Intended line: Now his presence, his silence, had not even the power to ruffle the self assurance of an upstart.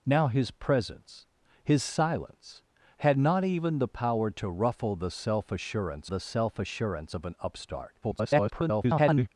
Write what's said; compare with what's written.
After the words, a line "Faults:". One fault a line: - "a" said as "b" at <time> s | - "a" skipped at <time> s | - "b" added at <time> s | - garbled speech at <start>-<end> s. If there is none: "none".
Now his presence, his silence, had not even the power to ruffle the self assurance the self assurance of an upstart. [garbled]
Faults:
- "the self assurance" added at 6.1 s
- garbled speech at 8.0-9.3 s